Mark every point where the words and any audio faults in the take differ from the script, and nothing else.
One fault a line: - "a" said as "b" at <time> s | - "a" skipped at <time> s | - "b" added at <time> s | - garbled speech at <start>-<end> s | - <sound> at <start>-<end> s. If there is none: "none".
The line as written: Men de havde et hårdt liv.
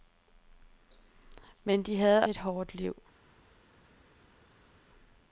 none